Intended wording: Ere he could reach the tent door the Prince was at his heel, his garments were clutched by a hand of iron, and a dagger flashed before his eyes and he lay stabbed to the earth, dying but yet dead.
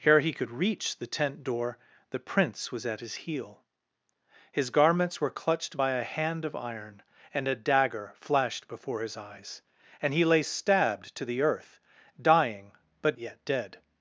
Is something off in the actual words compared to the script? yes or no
no